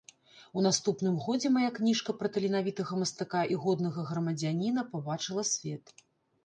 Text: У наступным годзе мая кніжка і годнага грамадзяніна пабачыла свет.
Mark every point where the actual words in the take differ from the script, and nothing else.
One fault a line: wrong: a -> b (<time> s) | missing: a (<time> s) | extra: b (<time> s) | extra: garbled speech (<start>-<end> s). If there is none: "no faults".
extra: пра таленавітага мастака (2.2 s)